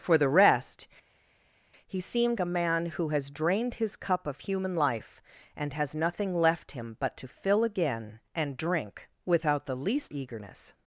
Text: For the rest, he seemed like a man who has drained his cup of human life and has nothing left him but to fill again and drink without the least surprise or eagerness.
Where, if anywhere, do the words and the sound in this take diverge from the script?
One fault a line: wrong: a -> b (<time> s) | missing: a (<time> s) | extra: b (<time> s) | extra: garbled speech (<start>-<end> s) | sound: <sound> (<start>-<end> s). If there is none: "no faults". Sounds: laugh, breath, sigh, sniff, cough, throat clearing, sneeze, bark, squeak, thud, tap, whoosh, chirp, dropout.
missing: like (2.4 s)
missing: surprise or (10.1 s)